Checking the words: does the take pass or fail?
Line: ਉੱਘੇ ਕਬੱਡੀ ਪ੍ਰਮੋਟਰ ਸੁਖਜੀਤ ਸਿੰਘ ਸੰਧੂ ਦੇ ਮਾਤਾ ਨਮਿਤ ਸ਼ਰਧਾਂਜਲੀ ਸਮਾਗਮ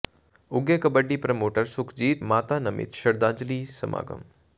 fail